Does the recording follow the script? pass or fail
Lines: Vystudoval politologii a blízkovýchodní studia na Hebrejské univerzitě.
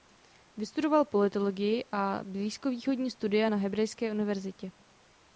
pass